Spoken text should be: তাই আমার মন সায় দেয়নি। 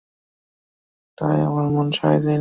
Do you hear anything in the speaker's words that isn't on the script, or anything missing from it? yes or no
no